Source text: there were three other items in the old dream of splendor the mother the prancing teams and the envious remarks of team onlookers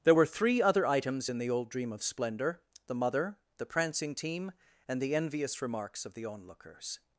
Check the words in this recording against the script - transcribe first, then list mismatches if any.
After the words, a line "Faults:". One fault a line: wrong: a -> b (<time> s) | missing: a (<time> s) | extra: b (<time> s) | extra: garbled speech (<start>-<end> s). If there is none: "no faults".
there were three other items in the old dream of splendor the mother the prancing team and the envious remarks of the onlookers
Faults:
wrong: teams -> team (4.1 s)
wrong: team -> the (6.1 s)